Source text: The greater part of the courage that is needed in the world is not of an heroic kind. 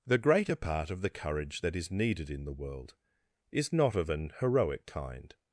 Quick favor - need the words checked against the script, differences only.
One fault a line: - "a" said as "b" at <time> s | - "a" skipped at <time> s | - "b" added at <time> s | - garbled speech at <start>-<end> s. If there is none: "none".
none